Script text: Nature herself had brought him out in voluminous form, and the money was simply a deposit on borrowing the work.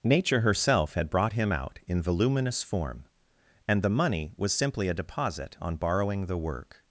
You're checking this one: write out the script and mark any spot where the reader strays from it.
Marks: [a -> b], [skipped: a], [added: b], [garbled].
Nature herself had brought him out in voluminous form, and the money was simply a deposit on borrowing the work.